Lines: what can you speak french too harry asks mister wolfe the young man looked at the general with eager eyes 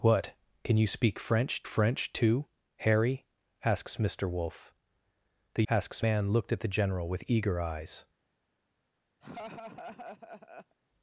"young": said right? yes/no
no